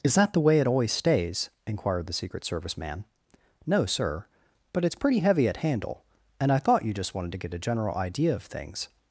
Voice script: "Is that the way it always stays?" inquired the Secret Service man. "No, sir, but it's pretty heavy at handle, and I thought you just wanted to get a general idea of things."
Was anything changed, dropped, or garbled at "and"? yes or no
no